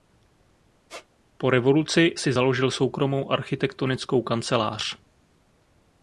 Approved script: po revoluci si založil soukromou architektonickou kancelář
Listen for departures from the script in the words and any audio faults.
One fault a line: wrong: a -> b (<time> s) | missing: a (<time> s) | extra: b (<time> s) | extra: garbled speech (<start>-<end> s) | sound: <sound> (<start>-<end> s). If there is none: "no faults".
sound: squeak (0.9-1.1 s)